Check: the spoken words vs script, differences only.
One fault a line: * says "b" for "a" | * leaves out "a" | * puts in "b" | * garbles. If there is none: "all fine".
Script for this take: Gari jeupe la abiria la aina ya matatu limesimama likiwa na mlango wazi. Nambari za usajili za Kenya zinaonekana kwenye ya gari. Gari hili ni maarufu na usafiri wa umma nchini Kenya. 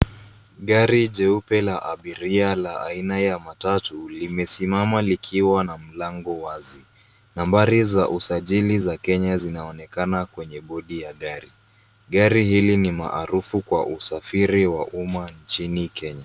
* puts in "bodi"
* says "kwa" for "na"